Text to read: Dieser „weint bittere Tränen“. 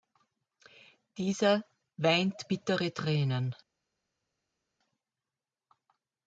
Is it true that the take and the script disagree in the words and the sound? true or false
false